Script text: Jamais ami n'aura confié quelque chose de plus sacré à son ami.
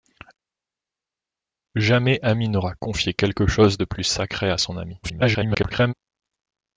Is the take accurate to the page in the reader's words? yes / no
no